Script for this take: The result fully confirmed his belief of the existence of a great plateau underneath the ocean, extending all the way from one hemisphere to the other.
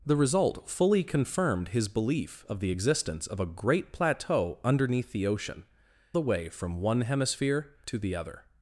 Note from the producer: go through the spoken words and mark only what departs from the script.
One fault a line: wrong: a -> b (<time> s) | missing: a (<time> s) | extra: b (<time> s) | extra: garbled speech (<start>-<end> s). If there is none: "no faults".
missing: extending all (5.7 s)